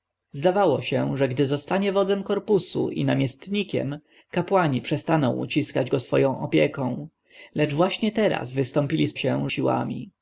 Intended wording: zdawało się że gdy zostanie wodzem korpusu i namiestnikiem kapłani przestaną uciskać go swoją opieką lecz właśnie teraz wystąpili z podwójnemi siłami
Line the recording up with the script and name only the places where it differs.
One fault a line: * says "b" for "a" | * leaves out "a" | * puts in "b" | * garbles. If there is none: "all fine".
* says "się" for "podwójnemi"